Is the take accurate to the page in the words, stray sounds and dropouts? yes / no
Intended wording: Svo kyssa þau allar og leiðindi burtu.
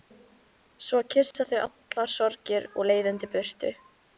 no